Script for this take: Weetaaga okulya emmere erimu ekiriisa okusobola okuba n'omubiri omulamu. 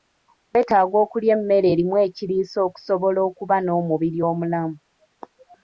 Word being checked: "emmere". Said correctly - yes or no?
yes